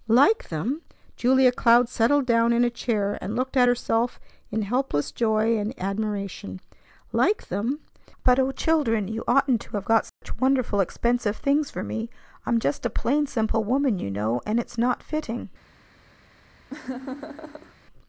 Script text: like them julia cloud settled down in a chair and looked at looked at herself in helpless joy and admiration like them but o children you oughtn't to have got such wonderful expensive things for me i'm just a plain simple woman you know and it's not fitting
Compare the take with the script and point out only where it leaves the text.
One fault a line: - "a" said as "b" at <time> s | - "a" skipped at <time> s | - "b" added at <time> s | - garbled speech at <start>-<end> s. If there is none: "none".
- "looked at" skipped at 3.7 s